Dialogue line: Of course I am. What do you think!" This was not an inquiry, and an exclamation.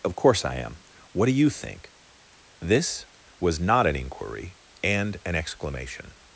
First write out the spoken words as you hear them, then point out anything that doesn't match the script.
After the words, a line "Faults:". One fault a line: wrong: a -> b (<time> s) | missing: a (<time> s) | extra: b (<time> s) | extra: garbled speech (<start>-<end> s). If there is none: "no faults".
Of course I am. What do you think!" This was not an inquiry, and an exclamation.
Faults:
no faults